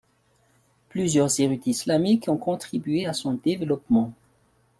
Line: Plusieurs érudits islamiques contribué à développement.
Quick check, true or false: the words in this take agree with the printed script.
false